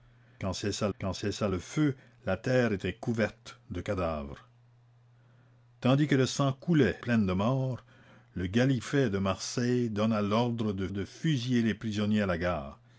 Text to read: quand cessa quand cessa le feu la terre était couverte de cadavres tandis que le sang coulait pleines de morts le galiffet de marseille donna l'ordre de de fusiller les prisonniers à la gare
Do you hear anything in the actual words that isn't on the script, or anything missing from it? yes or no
no